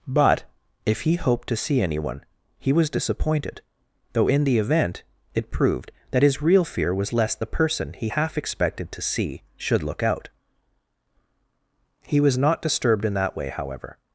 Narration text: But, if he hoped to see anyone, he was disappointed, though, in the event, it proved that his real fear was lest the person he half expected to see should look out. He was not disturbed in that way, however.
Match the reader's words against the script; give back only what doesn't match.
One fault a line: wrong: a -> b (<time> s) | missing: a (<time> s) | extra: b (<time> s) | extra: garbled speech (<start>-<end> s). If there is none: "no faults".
no faults